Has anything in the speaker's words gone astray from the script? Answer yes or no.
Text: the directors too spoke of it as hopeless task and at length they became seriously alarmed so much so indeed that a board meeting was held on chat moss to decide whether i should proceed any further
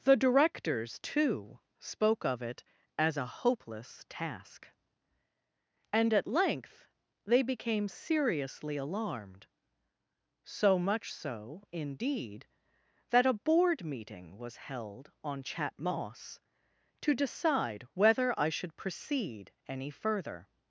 yes